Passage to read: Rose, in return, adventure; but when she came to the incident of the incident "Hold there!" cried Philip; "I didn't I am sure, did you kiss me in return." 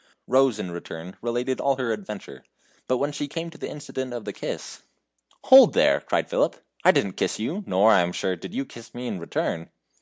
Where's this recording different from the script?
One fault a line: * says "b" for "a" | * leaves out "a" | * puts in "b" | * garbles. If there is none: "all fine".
* puts in "related all her"
* says "kiss" for "incident"
* puts in "kiss you nor"